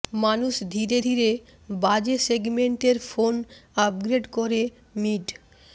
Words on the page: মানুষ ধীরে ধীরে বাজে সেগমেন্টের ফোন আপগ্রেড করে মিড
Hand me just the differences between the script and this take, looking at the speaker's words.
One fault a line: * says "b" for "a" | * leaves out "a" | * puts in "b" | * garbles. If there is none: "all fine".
all fine